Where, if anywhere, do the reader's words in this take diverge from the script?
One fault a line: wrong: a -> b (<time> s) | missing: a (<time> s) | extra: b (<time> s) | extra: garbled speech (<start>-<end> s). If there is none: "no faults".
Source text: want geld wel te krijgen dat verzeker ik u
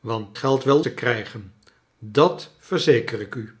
no faults